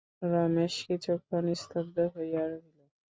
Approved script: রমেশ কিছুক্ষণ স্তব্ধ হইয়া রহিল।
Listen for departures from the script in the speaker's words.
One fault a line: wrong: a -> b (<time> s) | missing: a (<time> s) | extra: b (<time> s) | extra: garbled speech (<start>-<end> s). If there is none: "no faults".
no faults